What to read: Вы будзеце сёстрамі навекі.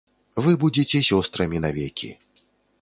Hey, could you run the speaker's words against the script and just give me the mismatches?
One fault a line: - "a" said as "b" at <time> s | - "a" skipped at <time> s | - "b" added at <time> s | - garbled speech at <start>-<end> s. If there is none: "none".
none